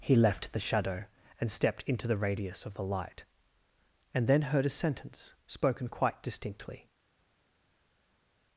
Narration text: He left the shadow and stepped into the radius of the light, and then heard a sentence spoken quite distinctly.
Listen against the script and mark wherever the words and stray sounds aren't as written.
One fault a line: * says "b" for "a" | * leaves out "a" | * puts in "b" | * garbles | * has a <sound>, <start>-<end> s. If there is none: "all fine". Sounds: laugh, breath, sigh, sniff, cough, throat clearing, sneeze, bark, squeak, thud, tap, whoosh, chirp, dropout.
all fine